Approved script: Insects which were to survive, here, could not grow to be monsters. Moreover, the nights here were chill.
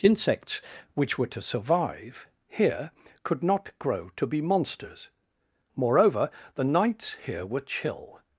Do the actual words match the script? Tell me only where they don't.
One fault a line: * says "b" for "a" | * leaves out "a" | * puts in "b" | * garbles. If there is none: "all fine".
all fine